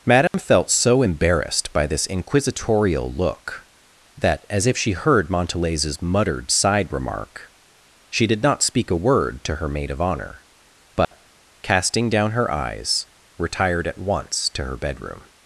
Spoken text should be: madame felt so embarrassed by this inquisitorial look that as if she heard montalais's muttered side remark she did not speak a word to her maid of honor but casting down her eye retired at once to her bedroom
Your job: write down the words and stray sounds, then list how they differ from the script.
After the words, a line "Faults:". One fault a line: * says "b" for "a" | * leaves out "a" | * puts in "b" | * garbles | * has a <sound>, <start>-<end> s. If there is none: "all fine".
madame felt so embarrassed by this inquisitorial look that as if she heard montalais's muttered side remark she did not speak a word to her maid of honor but casting down her eyes retired at once to her bedroom
Faults:
* has a dropout, 0.3-0.3 s
* has a dropout, 11.0-11.1 s
* says "eyes" for "eye"